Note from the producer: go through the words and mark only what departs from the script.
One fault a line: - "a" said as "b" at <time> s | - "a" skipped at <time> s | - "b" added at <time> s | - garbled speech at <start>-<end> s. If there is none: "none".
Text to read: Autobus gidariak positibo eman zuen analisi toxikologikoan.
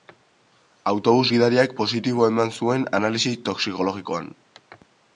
none